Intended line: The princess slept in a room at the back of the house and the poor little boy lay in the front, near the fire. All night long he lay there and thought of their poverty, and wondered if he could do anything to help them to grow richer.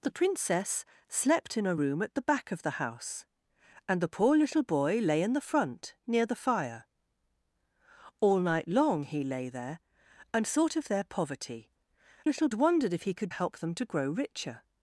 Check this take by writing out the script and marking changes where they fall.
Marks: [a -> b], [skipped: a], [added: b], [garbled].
The princess slept in a room at the back of the house and the poor little boy lay in the front, near the fire. All night long he lay there and thought of their poverty, [and -> little] wondered if he could [skipped: do anything to] help them to grow richer.